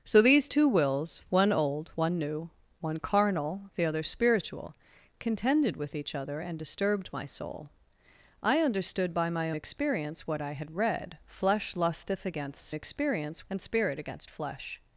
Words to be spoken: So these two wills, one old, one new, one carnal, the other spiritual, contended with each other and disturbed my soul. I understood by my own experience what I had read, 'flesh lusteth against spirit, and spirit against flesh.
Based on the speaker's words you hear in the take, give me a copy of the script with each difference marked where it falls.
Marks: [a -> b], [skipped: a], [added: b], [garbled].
So these two wills, one old, one new, one carnal, the other spiritual, contended with each other and disturbed my soul. I understood by my [skipped: own] experience what I had read, 'flesh lusteth against [spirit, -> experience] and spirit against flesh.